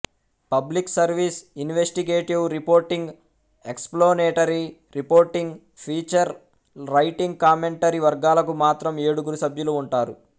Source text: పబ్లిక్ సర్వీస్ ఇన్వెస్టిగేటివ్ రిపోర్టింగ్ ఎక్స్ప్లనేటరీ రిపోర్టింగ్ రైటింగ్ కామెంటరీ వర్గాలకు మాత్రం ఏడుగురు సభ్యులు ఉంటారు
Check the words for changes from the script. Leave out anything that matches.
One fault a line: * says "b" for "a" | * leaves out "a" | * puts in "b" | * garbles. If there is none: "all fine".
* puts in "ఫీచర్"